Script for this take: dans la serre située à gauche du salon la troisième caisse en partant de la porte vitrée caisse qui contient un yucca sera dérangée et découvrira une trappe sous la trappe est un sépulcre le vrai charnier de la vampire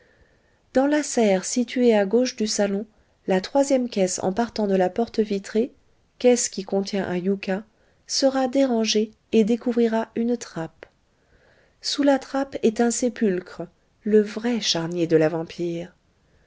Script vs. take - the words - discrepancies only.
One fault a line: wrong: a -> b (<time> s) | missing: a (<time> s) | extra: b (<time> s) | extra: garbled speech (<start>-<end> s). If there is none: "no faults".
no faults